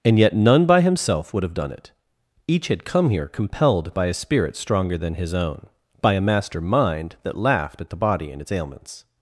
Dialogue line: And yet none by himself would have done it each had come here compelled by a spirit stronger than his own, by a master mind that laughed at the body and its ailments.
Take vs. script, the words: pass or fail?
pass